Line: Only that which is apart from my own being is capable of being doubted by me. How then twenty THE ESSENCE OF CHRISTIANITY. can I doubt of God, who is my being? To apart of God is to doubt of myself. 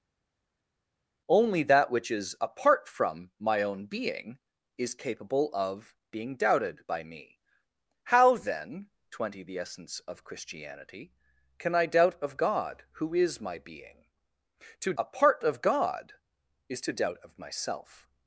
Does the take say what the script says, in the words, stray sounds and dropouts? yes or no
yes